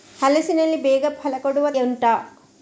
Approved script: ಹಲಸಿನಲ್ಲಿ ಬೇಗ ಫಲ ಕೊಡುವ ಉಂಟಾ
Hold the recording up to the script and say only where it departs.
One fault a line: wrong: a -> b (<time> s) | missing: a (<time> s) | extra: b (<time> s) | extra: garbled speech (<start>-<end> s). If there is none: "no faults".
no faults